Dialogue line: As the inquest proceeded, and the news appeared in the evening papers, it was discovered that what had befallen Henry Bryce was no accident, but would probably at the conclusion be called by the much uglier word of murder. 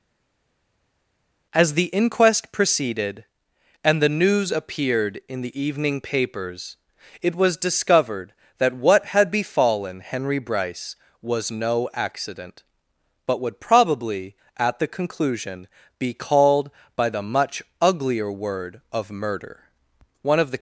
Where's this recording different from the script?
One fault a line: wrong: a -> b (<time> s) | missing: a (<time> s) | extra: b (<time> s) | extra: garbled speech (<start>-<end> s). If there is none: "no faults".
extra: One of the (20.2 s)